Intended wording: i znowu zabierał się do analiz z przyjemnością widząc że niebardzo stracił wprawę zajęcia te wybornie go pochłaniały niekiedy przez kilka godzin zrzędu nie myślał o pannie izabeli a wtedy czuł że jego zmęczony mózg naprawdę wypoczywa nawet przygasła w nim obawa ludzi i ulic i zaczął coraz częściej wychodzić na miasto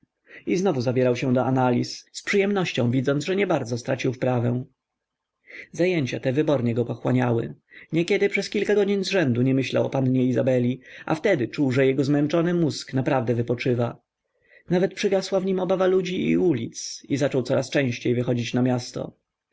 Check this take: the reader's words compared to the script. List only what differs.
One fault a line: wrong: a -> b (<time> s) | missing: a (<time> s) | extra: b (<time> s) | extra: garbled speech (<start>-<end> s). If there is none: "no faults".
no faults